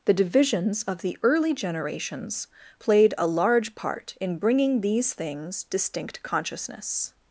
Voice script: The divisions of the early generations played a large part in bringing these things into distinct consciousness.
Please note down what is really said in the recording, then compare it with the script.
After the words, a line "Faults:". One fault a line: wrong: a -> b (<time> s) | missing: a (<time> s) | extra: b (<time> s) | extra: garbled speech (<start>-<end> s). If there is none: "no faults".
The divisions of the early generations played a large part in bringing these things distinct consciousness.
Faults:
missing: into (5.6 s)